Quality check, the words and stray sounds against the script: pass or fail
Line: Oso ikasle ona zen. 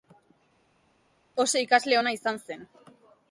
fail